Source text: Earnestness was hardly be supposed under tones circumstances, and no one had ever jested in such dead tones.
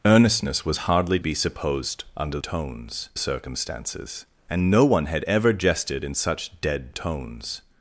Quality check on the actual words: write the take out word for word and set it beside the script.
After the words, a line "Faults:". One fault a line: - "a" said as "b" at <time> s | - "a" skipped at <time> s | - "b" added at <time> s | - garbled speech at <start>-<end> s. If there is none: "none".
Earnestness was hardly be supposed under tones circumstances, and no one had ever jested in such dead tones.
Faults:
none